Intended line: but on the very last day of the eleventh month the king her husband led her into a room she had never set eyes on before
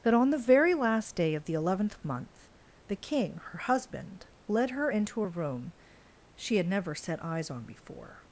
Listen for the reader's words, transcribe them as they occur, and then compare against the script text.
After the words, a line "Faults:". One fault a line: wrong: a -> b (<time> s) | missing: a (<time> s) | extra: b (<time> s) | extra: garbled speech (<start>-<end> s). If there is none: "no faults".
that on the very last day of the eleventh month the king her husband led her into a room she had never set eyes on before
Faults:
wrong: but -> that (0.0 s)